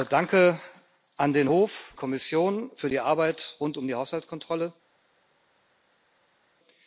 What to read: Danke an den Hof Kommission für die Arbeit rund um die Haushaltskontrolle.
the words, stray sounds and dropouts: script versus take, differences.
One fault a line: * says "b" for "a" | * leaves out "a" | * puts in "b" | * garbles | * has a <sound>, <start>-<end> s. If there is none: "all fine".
all fine